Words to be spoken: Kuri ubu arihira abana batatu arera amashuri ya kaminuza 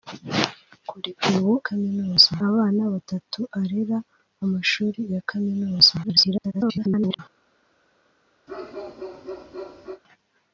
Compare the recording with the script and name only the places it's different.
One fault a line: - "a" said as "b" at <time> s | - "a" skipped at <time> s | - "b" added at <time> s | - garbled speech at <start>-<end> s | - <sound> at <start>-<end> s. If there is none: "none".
- "arihira" said as "kaminuza" at 1.6 s
- garbled speech at 6.0-7.2 s
- bark at 8.5-10.0 s